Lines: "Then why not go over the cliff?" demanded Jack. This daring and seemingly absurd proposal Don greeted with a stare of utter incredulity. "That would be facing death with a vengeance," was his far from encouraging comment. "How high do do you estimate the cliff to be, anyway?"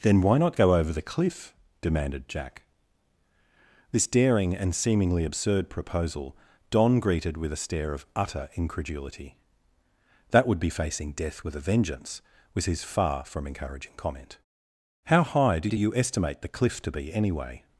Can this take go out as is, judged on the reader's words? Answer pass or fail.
pass